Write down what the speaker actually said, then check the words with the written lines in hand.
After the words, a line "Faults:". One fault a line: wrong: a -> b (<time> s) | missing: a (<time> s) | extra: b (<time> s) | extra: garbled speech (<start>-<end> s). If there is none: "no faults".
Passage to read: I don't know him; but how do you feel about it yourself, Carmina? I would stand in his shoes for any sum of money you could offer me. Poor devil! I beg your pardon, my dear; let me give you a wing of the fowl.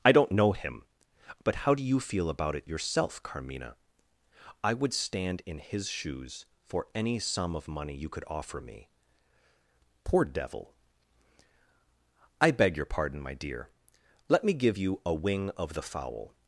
I don't know him; but how do you feel about it yourself, Carmina? I would stand in his shoes for any sum of money you could offer me. Poor devil! I beg your pardon, my dear; let me give you a wing of the fowl.
Faults:
no faults